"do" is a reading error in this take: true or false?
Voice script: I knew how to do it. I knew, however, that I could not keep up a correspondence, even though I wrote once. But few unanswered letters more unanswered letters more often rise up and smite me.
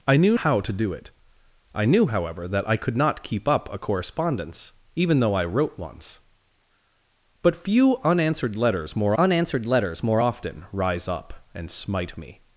false